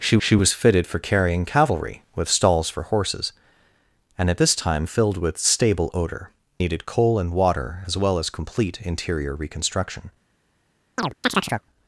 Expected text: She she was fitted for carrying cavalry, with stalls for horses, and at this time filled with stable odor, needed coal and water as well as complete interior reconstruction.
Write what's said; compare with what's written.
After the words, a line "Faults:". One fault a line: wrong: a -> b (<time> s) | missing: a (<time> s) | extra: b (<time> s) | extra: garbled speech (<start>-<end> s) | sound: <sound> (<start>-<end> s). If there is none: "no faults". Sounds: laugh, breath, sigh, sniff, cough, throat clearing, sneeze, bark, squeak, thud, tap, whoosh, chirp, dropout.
She she was fitted for carrying cavalry, with stalls for horses, and at this time filled with stable odor, needed coal and water as well as complete interior reconstruction.
Faults:
sound: chirp (11.0-11.6 s)